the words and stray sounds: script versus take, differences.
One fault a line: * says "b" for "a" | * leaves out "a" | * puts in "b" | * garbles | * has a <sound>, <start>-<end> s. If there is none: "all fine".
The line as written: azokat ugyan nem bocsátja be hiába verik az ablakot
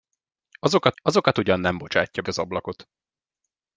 * puts in "azokat"
* leaves out "be hiába verik"